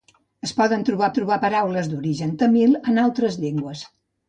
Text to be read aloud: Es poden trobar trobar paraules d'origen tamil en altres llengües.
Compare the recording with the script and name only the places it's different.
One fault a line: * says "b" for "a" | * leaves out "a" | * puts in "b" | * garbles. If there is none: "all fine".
all fine